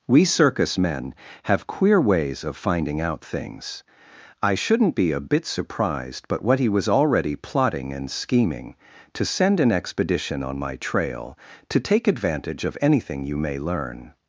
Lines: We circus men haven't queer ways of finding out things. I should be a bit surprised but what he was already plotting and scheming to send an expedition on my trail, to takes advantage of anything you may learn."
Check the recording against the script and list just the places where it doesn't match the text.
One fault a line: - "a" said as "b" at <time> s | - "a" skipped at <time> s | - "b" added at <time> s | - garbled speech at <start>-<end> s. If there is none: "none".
- "haven't" said as "have" at 1.4 s
- "should" said as "shouldn't" at 4.5 s
- "takes" said as "take" at 11.8 s